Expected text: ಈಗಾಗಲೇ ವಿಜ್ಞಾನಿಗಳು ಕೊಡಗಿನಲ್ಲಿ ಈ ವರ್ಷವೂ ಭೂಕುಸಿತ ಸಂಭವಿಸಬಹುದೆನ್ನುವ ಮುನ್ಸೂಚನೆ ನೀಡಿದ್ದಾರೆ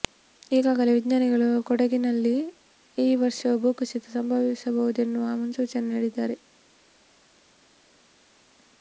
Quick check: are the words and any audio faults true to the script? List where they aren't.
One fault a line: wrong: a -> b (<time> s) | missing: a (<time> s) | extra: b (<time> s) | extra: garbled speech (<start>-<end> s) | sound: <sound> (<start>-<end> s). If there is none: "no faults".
no faults